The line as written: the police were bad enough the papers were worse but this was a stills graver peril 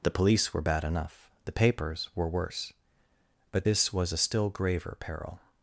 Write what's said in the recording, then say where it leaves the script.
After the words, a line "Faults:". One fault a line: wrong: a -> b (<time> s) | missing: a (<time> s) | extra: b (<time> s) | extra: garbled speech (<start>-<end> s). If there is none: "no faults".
the police were bad enough the papers were worse but this was a still graver peril
Faults:
wrong: stills -> still (4.2 s)